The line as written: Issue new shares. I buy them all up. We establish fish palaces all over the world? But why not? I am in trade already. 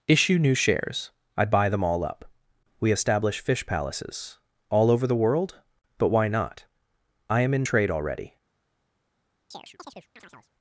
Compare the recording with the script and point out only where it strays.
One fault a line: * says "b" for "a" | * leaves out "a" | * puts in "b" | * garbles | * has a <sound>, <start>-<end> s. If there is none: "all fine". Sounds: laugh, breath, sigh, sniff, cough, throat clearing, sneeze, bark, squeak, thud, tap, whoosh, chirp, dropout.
* has a chirp, 9.5-10.5 s